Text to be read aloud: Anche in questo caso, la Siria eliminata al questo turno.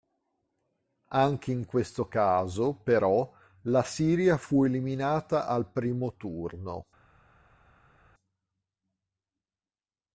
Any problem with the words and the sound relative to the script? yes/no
yes